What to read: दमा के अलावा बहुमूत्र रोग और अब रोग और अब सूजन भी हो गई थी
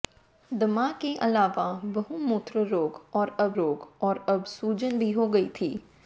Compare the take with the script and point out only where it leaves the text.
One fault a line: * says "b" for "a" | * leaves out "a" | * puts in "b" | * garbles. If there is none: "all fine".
all fine